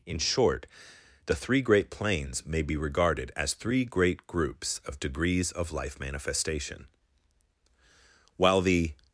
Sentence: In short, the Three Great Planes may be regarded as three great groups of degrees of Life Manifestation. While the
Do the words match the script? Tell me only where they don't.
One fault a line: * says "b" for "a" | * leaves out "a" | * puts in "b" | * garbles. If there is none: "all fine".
all fine